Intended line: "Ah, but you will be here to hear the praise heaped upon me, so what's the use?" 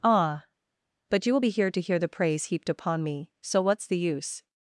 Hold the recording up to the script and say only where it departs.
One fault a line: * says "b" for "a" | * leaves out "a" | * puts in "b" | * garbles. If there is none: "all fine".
all fine